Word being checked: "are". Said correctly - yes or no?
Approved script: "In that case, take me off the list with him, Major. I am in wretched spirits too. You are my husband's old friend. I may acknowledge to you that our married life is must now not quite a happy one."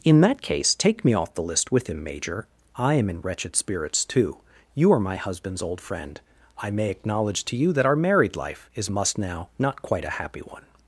yes